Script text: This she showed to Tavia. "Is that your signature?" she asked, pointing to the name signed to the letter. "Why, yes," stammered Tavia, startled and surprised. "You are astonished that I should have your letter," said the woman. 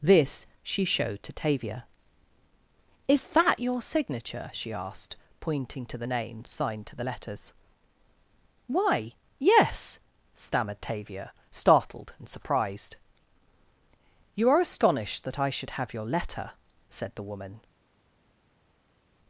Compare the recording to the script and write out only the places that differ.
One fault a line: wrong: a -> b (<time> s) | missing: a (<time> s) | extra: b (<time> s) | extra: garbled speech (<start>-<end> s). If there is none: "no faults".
wrong: letter -> letters (7.0 s)